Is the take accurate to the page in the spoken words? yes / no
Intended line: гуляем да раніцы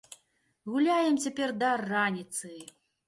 no